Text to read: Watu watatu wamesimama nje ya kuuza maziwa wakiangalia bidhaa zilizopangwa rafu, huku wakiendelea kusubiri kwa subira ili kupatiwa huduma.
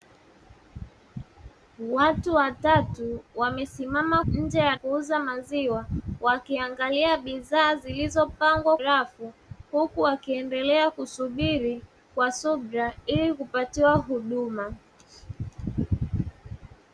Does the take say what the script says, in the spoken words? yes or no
yes